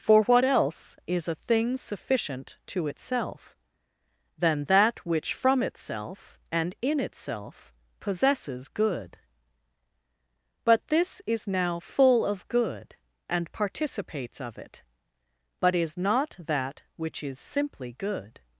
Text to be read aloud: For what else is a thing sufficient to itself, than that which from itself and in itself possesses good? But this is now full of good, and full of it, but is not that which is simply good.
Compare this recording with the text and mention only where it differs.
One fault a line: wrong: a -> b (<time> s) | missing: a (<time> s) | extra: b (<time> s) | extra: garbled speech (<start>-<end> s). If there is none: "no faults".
wrong: full -> participates (13.5 s)